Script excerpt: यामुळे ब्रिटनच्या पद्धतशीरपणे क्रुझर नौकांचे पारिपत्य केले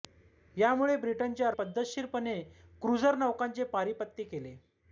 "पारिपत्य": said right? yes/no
yes